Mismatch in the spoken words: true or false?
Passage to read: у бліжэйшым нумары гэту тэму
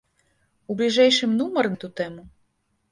false